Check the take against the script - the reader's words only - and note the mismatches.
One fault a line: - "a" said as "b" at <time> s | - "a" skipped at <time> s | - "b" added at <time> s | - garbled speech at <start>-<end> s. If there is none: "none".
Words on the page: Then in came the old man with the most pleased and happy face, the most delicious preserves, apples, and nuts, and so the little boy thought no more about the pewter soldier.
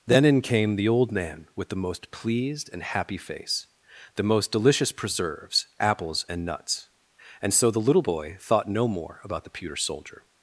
none